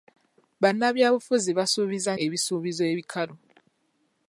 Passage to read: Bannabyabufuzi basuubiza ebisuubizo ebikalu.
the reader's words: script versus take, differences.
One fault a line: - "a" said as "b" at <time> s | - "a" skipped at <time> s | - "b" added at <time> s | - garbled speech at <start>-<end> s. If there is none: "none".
none